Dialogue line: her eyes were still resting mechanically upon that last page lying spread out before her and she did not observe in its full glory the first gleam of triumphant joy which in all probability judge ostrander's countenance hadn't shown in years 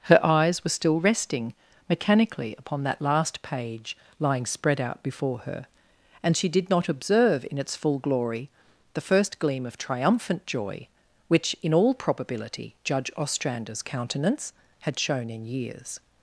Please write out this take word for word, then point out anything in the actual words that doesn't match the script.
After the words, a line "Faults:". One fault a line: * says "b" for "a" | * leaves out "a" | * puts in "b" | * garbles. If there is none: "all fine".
her eyes were still resting mechanically upon that last page lying spread out before her and she did not observe in its full glory the first gleam of triumphant joy which in all probability judge ostrander's countenance had shown in years
Faults:
* says "had" for "hadn't"